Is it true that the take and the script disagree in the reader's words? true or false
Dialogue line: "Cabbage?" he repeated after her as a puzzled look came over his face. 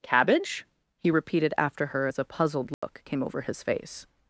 false